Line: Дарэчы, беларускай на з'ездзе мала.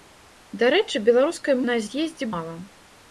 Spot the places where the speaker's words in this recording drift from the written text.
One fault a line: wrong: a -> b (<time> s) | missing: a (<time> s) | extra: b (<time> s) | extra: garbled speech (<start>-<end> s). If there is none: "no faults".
no faults